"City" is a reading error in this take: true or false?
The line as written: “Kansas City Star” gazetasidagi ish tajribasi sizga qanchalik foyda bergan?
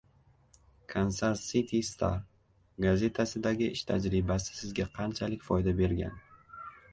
false